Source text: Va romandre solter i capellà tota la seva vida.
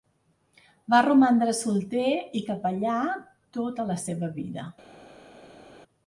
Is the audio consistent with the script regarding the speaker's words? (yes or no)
yes